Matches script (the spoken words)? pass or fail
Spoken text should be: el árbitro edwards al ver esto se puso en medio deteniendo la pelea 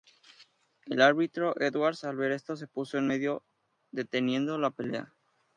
pass